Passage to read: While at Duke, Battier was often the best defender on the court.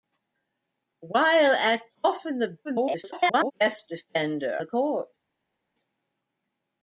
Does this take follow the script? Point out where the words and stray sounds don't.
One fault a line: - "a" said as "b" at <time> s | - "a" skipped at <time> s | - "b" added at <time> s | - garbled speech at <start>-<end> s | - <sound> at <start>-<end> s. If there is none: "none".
- "Duke Battier was" skipped at 1.9 s
- garbled speech at 2.6-3.5 s
- "on" skipped at 4.6 s